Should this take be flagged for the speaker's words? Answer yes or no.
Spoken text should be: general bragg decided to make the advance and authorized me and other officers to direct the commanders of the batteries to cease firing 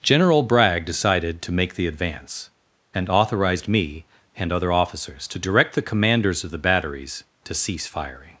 no